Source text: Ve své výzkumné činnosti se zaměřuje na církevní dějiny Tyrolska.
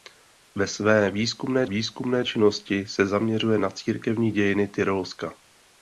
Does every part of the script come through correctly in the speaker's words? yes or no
no